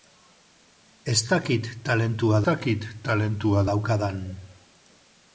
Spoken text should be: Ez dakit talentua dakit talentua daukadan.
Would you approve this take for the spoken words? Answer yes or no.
yes